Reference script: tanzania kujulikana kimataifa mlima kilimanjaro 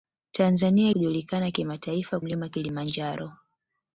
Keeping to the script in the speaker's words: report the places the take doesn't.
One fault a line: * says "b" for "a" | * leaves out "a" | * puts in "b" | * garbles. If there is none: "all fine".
all fine